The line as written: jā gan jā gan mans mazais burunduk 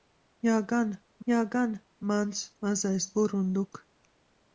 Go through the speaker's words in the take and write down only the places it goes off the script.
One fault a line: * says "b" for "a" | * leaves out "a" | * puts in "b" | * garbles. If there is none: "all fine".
all fine